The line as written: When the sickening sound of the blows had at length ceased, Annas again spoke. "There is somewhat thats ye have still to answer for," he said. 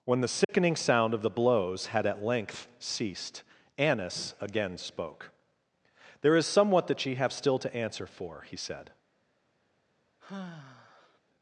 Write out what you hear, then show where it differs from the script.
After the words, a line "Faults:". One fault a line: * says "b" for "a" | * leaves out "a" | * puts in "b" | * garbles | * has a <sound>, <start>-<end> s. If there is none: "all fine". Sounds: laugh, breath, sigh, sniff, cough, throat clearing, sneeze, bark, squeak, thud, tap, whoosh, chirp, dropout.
When the sickening sound of the blows had at length ceased, Annas again spoke. "There is somewhat that ye have still to answer for," he said.
Faults:
* has a dropout, 0.4-0.5 s
* says "that" for "thats"
* has a sigh, 10.2-11.2 s